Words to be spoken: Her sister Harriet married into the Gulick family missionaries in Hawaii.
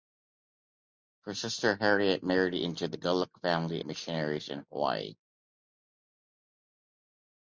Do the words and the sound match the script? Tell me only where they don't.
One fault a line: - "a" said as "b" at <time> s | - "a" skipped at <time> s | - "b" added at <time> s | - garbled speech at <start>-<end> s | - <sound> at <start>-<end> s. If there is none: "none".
none